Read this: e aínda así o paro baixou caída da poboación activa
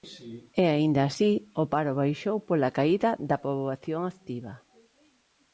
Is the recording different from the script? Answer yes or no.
yes